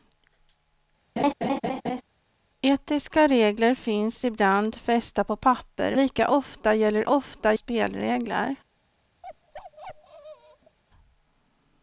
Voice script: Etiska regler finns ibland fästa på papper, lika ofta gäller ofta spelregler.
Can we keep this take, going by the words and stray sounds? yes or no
no